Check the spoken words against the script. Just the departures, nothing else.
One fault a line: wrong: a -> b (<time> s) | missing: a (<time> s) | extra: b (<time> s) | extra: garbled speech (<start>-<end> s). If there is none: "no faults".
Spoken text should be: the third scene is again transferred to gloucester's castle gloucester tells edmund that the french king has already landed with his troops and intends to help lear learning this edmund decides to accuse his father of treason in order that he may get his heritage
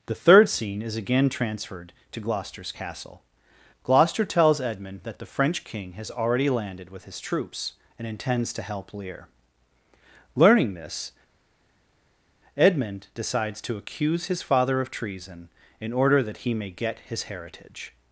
no faults